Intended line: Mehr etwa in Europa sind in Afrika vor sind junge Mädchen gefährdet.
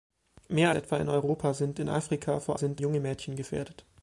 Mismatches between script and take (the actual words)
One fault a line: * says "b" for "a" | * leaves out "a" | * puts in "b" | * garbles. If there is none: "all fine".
all fine